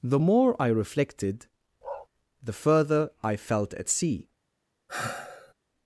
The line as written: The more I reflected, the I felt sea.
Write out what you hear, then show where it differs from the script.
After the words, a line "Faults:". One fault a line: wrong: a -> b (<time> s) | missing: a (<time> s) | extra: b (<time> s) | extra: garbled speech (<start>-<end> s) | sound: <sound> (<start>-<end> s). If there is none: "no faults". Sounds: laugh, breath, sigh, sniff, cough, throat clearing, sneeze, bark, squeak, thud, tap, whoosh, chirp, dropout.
The more I reflected, the further I felt at sea.
Faults:
sound: bark (1.8-2.1 s)
extra: further (2.5 s)
extra: at (3.7 s)
sound: sigh (4.9-5.5 s)